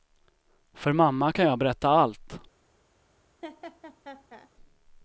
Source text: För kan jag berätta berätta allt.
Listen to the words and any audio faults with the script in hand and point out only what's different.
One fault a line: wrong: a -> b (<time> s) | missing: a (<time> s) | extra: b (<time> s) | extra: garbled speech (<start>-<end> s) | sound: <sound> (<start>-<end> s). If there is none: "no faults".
extra: mamma (0.9 s)
missing: berätta (1.9 s)
sound: laugh (3.4-4.5 s)